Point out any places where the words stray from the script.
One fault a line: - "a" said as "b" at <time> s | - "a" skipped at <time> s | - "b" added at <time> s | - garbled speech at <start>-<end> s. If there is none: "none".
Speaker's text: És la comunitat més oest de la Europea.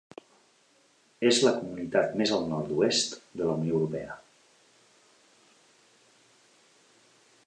- "al nord" added at 2.4 s
- "Unió" added at 3.6 s